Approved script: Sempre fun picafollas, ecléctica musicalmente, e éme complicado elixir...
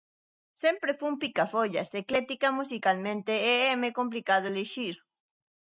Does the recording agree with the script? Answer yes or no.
yes